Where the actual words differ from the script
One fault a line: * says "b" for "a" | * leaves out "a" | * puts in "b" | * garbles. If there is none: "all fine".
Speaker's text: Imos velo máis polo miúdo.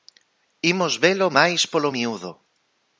all fine